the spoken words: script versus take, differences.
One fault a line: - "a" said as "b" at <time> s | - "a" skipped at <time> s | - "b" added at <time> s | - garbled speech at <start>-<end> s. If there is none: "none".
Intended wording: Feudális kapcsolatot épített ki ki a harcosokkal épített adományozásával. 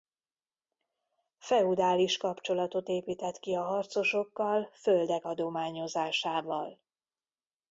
- "ki" skipped at 3.5 s
- "épített" said as "földek" at 4.7 s